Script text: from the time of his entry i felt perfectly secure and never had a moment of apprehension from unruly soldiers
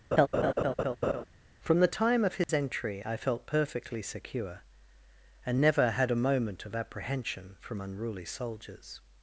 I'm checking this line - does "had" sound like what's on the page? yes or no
yes